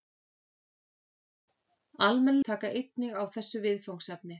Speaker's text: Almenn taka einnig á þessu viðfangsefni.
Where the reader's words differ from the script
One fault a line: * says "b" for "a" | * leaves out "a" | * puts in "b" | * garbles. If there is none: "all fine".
all fine